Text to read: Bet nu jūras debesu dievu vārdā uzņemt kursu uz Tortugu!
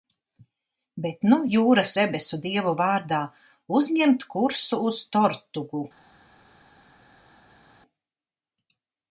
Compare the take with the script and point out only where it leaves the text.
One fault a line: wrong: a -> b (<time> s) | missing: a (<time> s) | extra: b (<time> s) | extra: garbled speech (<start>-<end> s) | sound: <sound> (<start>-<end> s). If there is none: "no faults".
no faults